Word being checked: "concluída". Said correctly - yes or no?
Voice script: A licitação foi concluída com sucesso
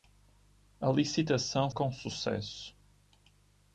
no